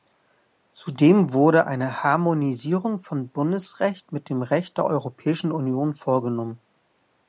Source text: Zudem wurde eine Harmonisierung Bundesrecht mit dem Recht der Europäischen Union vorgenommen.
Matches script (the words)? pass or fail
fail